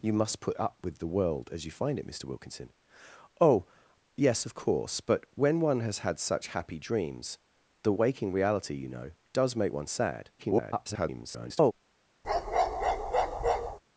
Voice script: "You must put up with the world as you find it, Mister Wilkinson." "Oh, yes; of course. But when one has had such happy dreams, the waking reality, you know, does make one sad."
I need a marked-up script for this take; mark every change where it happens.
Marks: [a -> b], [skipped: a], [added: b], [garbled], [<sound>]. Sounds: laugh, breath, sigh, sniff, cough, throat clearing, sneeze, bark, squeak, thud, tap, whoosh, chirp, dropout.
"You must put up with the world as you find it, Mister Wilkinson." "Oh, yes; of course. But when one has had such happy dreams, the waking reality, you know, does make one sad." [garbled] [bark]